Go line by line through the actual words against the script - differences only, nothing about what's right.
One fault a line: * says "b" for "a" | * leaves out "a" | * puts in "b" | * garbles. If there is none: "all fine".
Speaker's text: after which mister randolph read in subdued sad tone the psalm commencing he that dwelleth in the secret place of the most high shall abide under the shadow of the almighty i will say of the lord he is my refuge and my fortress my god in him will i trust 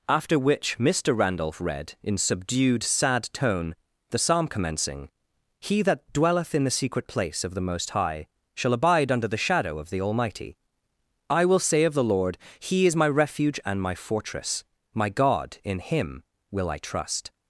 all fine